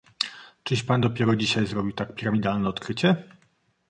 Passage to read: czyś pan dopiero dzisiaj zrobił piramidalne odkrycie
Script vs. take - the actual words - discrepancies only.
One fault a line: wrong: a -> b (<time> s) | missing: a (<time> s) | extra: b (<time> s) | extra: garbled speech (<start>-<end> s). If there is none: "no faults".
extra: tak (1.9 s)